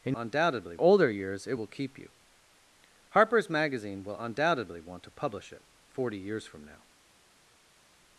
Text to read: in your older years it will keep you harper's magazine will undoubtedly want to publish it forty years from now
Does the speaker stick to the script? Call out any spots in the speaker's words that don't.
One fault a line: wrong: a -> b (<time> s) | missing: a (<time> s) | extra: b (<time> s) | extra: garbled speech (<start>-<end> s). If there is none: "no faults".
wrong: your -> undoubtedly (0.1 s)